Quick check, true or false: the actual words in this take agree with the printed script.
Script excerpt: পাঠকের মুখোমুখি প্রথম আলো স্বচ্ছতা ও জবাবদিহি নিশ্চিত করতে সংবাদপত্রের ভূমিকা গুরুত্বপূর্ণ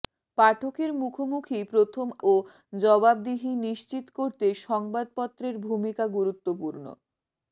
false